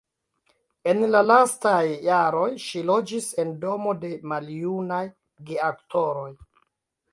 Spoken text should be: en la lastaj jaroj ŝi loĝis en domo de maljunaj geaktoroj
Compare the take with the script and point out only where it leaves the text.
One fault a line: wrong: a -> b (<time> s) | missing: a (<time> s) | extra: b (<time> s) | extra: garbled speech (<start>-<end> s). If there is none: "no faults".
no faults